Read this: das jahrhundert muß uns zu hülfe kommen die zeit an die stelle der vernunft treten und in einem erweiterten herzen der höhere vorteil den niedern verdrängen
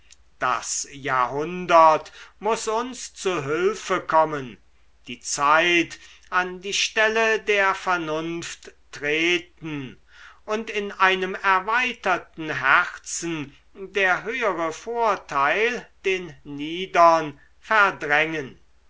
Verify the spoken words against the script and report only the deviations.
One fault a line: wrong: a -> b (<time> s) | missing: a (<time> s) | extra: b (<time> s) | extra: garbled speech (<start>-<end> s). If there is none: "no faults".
no faults